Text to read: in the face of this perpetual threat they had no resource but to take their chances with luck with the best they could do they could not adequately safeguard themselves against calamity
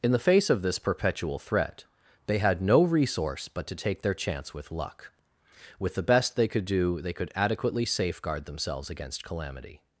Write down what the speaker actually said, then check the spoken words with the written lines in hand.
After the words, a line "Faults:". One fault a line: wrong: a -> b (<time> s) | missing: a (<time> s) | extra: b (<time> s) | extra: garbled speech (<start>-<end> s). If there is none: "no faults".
in the face of this perpetual threat they had no resource but to take their chance with luck with the best they could do they could adequately safeguard themselves against calamity
Faults:
wrong: chances -> chance (4.2 s)
missing: not (7.3 s)